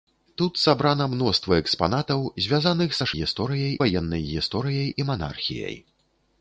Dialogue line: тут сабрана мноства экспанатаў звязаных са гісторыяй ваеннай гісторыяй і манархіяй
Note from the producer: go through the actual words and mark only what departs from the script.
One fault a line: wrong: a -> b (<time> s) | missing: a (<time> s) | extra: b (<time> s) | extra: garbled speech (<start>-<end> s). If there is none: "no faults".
no faults